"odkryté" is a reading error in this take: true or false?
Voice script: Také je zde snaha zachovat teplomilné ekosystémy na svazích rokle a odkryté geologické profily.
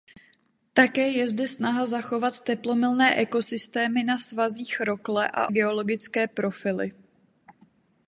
true